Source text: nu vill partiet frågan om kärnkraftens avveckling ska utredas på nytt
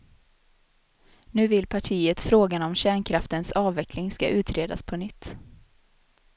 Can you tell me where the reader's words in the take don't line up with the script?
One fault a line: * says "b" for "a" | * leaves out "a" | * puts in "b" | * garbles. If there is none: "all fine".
all fine